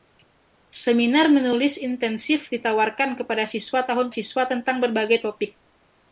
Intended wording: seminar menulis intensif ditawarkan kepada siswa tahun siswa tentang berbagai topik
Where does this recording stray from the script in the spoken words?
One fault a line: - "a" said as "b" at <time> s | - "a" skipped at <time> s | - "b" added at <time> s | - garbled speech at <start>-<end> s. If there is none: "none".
none